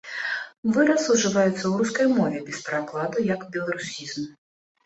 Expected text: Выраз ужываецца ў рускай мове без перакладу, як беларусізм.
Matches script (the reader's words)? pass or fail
pass